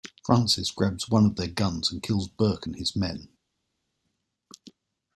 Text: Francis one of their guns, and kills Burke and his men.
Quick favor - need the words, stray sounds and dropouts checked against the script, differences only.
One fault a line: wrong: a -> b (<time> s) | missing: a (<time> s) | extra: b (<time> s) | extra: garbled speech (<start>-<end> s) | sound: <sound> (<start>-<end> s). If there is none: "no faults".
extra: grabs (0.7 s)